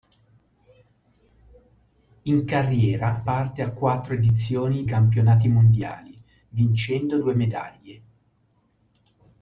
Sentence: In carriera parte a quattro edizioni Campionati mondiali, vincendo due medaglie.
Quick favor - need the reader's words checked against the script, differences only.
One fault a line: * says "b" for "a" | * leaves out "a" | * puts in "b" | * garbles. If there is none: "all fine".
all fine